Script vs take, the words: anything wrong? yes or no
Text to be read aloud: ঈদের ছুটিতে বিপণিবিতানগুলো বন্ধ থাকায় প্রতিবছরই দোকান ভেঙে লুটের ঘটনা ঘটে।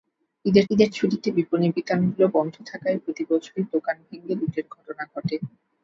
yes